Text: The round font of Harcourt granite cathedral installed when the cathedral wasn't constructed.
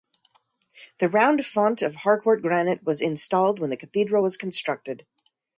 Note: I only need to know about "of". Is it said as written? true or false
true